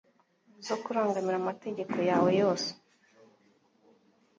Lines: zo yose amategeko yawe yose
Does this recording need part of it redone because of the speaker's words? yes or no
yes